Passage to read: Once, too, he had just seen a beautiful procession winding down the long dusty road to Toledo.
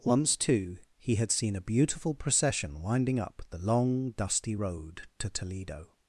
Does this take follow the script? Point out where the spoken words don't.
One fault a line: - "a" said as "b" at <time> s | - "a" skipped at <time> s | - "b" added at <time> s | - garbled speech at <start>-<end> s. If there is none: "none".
- "just" skipped at 1.3 s
- "down" said as "up" at 3.2 s